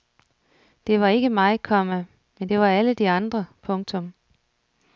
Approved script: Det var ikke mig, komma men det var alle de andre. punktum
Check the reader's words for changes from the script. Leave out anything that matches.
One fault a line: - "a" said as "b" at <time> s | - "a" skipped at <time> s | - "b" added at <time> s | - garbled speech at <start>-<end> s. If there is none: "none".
none